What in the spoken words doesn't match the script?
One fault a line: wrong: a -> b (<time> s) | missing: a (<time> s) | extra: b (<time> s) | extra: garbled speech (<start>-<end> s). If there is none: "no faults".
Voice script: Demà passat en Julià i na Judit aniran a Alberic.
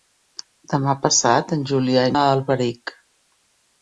missing: na Judit aniran (2.2 s)